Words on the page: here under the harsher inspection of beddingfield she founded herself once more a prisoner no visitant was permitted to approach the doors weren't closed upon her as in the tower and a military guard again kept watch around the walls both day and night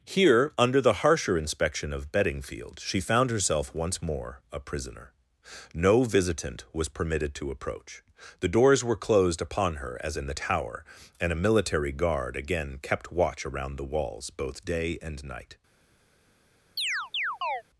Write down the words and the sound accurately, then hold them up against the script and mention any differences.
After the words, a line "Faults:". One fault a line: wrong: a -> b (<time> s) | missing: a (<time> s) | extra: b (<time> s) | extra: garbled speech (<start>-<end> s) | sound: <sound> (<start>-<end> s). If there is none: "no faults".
here under the harsher inspection of beddingfield she found herself once more a prisoner no visitant was permitted to approach the doors were closed upon her as in the tower and a military guard again kept watch around the walls both day and night
Faults:
wrong: founded -> found (3.0 s)
wrong: weren't -> were (8.8 s)
sound: chirp (16.8-17.6 s)